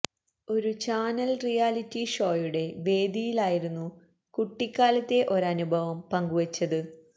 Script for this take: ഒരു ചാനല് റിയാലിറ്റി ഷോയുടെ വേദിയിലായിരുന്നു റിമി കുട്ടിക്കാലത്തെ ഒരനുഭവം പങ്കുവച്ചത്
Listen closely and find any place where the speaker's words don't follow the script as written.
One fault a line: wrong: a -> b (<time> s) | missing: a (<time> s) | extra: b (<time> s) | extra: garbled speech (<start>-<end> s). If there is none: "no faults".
missing: റിമി (3.9 s)